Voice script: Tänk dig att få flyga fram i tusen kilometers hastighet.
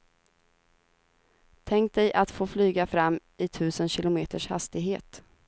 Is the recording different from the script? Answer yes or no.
no